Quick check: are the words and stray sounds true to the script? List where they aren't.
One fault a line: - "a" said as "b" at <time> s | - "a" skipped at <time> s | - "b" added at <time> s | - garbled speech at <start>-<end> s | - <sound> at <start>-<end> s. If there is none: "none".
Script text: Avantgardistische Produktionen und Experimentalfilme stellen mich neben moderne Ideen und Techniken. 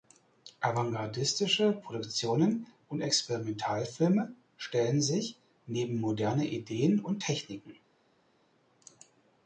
- "mich" said as "sich" at 5.0 s